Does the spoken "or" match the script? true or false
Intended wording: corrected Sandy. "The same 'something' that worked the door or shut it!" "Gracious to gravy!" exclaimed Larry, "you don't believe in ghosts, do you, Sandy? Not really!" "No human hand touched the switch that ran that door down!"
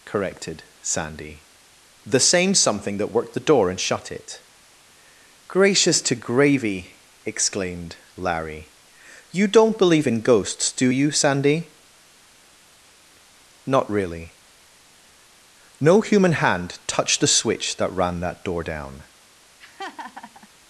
false